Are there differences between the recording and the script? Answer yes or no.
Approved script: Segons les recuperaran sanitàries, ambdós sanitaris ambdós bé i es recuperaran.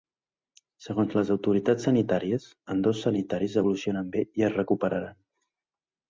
yes